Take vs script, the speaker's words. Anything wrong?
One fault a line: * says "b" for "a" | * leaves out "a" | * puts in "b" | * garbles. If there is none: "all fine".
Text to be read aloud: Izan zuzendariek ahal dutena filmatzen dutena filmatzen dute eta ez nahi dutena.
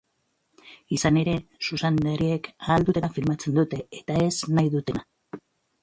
* puts in "ere"
* leaves out "dutena filmatzen"